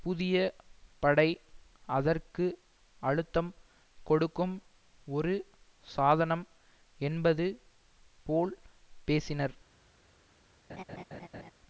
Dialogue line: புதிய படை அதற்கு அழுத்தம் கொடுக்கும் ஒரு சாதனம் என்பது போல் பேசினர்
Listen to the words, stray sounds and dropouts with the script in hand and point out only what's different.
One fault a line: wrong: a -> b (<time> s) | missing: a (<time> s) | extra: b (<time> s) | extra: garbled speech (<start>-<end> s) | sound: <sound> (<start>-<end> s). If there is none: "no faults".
sound: laugh (10.7-11.5 s)